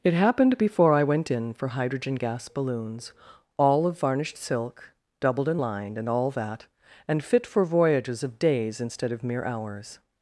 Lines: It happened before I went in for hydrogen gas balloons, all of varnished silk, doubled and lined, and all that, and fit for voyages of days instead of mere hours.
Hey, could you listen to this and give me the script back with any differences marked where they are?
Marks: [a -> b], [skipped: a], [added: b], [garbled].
It happened before I went in for hydrogen gas balloons, all of varnished silk, doubled and lined, and all that, and fit for voyages of days instead of mere hours.